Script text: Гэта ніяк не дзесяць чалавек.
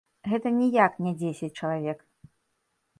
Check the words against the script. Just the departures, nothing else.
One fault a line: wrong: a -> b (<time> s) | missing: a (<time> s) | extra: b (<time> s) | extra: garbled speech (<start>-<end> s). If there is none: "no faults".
no faults